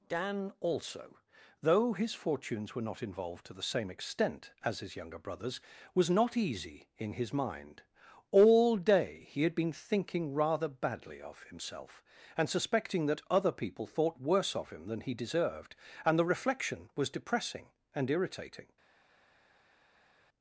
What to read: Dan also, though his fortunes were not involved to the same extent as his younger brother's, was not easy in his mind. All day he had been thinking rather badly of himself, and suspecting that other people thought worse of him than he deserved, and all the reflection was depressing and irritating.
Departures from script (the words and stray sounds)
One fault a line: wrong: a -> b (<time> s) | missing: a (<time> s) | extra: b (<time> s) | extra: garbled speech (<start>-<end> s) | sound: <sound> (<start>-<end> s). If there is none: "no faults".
missing: all (16.2 s)